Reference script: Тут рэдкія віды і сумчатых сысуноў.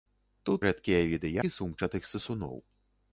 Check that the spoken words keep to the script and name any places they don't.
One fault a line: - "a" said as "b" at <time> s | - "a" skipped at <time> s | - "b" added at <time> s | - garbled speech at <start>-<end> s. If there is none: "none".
none